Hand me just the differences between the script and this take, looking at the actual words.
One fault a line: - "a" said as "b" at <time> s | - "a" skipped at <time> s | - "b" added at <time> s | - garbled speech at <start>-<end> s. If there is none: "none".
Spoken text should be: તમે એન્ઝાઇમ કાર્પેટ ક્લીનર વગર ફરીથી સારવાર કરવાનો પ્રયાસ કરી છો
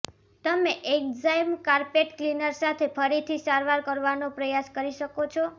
- "વગર" said as "સાથે" at 2.6 s
- "શકો" added at 5.0 s